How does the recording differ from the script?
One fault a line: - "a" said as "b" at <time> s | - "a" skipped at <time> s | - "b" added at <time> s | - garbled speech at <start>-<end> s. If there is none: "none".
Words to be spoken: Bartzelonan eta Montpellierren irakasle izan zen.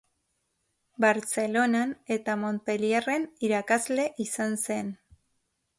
none